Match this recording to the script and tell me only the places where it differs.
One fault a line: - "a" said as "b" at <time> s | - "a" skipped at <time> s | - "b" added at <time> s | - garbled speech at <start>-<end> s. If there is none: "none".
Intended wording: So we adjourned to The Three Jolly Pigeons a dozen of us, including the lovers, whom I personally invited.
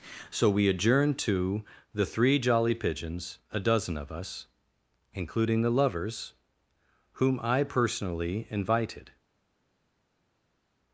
none